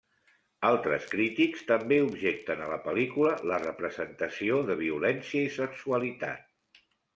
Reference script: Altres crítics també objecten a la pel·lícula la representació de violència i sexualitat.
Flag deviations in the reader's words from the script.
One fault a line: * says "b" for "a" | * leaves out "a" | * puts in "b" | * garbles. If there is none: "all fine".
all fine